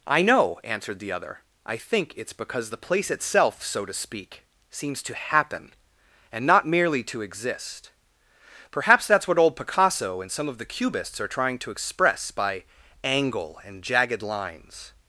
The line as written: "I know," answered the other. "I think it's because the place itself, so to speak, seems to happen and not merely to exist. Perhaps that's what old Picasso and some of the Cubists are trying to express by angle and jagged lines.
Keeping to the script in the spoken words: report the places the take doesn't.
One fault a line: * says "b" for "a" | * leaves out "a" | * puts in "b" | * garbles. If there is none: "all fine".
all fine